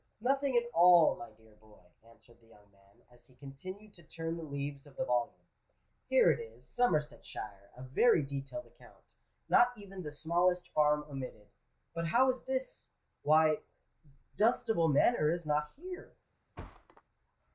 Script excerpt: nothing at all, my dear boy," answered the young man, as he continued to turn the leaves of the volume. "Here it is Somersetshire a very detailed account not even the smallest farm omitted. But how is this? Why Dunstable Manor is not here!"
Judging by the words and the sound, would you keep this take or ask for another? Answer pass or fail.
fail